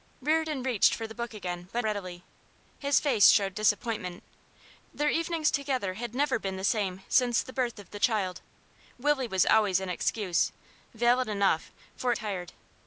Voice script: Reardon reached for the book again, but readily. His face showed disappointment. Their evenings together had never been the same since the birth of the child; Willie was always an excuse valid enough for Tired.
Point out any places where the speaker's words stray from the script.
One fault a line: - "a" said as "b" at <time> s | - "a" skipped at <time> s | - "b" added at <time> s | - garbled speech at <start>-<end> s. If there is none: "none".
none